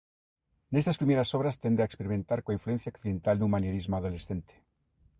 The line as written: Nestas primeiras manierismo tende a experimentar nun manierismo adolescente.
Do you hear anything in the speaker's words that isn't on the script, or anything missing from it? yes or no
yes